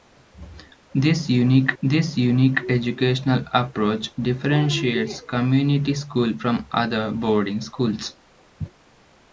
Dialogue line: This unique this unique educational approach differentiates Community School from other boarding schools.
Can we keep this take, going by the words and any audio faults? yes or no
yes